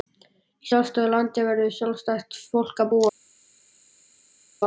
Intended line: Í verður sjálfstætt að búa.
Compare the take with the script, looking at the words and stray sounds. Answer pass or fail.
fail